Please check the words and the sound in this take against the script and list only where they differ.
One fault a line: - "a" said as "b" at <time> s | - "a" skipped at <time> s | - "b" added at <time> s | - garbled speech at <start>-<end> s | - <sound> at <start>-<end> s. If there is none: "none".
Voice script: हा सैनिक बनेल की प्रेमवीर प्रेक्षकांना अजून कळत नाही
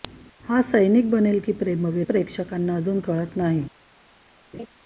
- laugh at 4.5-4.7 s